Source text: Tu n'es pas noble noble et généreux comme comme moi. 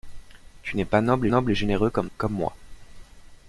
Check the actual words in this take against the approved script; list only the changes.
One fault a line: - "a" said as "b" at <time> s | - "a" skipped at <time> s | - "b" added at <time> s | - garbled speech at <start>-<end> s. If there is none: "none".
none